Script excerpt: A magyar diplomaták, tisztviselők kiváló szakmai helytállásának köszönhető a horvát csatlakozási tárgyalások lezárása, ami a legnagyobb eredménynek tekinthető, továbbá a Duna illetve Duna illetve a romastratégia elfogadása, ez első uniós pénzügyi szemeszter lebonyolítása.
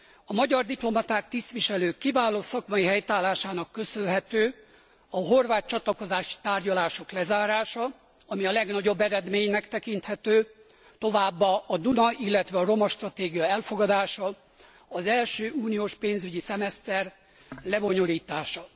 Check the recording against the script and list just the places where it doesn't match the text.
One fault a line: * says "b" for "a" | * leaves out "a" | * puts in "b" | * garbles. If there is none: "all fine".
* leaves out "Duna illetve"
* says "az" for "ez"